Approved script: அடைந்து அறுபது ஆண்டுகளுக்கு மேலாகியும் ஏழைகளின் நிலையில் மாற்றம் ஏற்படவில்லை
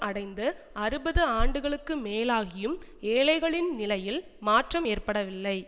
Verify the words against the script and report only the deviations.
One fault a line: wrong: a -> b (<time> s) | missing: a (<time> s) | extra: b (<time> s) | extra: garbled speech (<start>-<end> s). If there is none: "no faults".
no faults